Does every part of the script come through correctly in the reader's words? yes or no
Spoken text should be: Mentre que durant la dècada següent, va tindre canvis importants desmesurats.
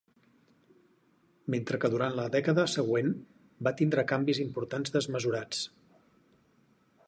yes